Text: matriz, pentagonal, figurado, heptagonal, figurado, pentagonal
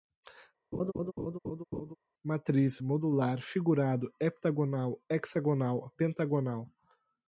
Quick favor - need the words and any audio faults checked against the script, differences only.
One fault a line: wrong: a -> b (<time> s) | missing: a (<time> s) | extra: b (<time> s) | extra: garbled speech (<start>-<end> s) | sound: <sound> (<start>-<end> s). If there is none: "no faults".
sound: laugh (0.7-2.0 s)
wrong: pentagonal -> modular (2.8 s)
wrong: figurado -> hexagonal (5.1 s)